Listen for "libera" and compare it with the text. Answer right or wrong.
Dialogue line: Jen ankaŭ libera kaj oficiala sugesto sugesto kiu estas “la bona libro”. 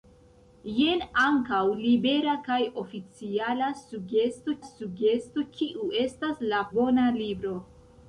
right